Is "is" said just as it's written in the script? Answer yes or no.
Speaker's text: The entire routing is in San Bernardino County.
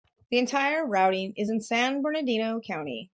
yes